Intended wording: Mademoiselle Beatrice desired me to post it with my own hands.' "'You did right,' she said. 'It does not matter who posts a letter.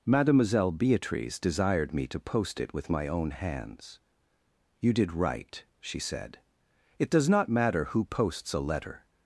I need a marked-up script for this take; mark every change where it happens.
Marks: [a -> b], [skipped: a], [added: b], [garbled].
Mademoiselle Beatrice desired me to post it with my own hands.' "'You did right,' she said. 'It does not matter who posts a letter.